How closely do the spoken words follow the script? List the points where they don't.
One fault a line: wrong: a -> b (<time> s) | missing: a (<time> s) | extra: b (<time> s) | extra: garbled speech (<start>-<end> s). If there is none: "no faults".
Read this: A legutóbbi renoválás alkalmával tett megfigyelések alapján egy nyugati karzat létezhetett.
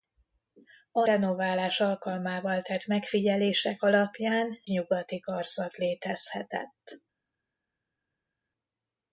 missing: legutóbbi (1.1 s)
missing: egy (4.6 s)